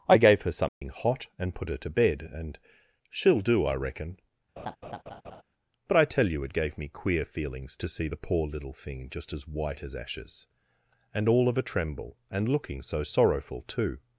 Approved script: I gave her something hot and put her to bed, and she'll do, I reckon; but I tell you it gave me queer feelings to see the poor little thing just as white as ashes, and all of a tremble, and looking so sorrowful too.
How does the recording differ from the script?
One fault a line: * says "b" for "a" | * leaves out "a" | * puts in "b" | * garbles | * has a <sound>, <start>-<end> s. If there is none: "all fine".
* has a dropout, 0.7-0.8 s
* has a laugh, 4.6-5.4 s